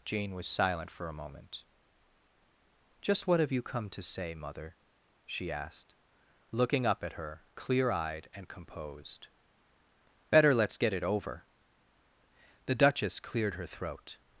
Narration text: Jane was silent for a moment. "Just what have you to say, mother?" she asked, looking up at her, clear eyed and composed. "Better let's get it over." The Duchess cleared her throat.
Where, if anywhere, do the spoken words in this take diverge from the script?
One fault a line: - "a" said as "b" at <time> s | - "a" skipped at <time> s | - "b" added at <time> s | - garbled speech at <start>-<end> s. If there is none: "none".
- "come" added at 3.6 s